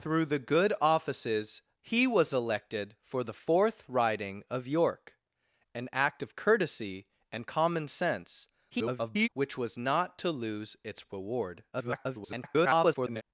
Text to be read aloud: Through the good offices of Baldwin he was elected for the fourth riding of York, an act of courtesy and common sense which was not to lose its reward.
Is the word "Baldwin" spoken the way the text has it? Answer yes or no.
no